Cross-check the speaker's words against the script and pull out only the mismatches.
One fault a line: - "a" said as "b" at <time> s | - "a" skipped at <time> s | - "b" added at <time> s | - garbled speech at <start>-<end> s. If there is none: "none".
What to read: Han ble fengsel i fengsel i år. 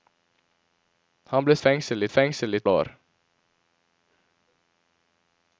none